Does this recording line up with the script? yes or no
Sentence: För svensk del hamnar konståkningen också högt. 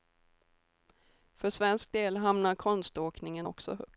yes